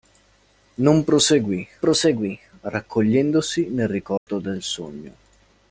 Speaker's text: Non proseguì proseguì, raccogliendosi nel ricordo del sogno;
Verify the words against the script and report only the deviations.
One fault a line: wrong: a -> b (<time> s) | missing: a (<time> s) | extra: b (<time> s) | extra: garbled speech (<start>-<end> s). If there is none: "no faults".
no faults